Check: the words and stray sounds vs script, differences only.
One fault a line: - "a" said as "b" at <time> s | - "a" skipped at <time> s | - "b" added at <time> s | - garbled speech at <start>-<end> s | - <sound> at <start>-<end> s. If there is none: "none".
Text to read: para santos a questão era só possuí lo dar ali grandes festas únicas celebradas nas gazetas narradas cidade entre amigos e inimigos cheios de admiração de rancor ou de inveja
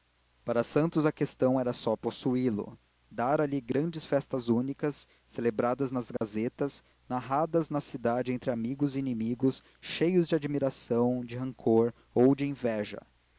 - dropout at 6.2-6.2 s
- "na" added at 7.7 s